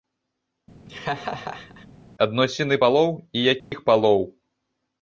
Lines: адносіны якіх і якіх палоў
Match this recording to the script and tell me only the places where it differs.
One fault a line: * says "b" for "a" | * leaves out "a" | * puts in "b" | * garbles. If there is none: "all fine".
* says "палоў" for "якіх"